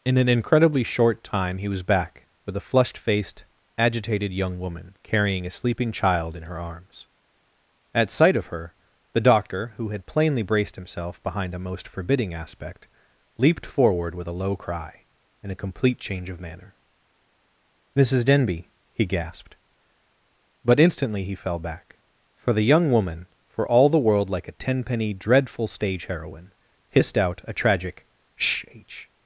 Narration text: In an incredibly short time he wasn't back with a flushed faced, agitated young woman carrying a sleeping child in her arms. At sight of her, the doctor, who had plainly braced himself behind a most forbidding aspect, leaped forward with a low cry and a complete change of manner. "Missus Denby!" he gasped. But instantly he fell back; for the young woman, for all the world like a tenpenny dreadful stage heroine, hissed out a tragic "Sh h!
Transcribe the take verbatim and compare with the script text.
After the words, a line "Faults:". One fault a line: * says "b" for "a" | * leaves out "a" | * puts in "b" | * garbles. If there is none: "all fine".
In an incredibly short time he was back with a flushed faced, agitated young woman carrying a sleeping child in her arms. At sight of her, the doctor, who had plainly braced himself behind a most forbidding aspect, leaped forward with a low cry and a complete change of manner. "Missus Denby!" he gasped. But instantly he fell back; for the young woman, for all the world like a tenpenny dreadful stage heroine, hissed out a tragic "Sh h!
Faults:
* says "was" for "wasn't"